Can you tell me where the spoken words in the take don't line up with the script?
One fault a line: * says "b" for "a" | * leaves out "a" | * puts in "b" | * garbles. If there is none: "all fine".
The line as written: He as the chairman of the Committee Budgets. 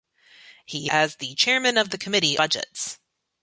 all fine